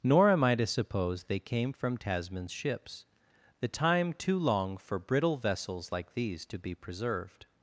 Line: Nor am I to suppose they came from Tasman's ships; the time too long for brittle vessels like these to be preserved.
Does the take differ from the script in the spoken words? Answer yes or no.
no